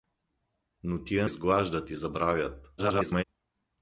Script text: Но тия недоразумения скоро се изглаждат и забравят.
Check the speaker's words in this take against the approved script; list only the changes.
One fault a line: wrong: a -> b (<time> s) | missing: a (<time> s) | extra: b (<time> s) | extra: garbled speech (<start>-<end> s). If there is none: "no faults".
missing: недоразумения скоро се (1.3 s)
extra: garbled speech (2.8-3.2 s)